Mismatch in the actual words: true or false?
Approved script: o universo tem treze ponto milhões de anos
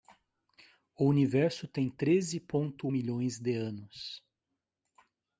false